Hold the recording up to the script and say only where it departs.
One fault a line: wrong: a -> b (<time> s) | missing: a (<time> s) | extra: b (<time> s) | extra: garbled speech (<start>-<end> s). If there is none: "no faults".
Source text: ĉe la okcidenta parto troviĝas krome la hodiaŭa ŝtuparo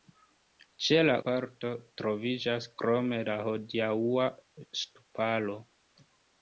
missing: okcidenta (1.2 s)